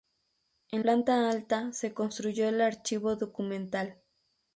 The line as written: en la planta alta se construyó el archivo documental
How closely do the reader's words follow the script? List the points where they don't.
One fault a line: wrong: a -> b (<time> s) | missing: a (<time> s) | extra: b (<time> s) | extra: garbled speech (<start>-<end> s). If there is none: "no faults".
missing: la (0.8 s)